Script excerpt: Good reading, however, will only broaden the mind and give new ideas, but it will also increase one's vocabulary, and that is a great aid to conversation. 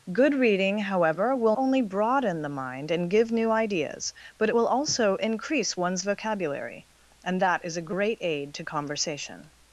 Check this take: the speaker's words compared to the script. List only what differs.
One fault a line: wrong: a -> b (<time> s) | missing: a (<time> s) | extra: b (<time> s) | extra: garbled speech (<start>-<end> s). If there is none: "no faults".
no faults